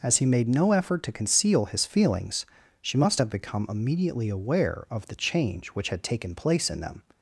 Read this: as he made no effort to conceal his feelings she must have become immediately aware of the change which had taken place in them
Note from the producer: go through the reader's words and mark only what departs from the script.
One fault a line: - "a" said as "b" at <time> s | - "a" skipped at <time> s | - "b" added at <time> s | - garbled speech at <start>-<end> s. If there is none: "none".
none